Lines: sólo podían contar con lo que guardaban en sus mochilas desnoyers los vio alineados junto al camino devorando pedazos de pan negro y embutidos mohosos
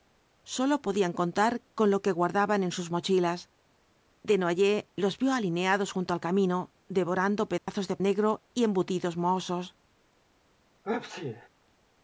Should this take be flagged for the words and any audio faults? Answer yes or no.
yes